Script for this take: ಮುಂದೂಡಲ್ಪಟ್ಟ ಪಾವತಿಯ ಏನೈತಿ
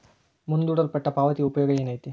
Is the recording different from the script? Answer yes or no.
yes